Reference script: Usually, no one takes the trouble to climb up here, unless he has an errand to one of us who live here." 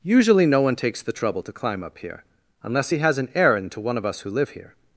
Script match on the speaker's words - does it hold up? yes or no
yes